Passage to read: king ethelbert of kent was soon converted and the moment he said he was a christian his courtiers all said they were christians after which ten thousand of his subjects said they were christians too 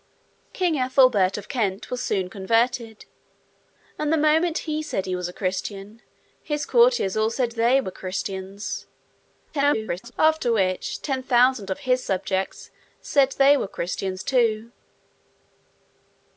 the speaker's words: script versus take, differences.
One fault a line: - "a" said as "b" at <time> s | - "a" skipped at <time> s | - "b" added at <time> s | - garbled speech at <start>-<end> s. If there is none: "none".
- garbled speech at 9.5-10.1 s